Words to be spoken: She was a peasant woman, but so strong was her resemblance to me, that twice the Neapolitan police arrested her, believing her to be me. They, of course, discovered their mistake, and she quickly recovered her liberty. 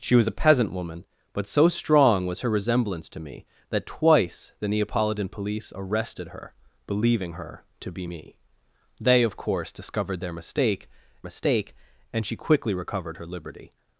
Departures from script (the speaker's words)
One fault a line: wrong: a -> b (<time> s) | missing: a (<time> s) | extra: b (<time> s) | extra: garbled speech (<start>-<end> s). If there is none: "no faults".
extra: mistake (11.2 s)